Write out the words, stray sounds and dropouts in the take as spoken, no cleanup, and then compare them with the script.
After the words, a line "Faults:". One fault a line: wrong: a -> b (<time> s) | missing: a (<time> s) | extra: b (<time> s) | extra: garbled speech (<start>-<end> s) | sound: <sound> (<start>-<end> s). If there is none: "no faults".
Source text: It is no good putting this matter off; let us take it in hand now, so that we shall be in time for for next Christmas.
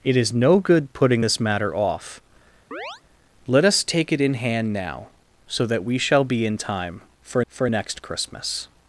It is no good putting this matter off; let us take it in hand now, so that we shall be in time for for next Christmas.
Faults:
sound: chirp (2.7-3.0 s)